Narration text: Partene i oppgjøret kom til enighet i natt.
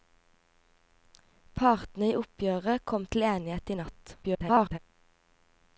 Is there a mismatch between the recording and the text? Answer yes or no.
yes